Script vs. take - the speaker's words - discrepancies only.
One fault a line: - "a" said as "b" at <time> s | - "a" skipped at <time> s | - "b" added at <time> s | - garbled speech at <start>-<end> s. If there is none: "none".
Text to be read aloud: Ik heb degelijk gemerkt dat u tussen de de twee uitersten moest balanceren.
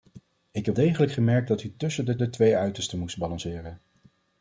none